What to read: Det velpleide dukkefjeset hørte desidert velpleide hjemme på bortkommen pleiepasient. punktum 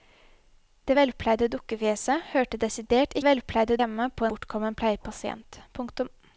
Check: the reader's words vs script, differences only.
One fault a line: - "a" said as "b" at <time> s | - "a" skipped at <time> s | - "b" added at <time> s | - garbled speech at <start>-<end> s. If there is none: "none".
none